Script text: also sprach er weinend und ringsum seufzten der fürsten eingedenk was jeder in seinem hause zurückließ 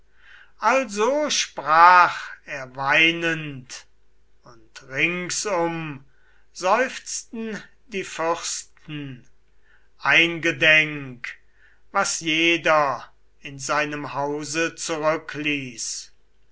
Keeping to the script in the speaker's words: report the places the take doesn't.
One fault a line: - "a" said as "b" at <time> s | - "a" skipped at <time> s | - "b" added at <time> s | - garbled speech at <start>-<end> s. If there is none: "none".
- "der" said as "die" at 7.8 s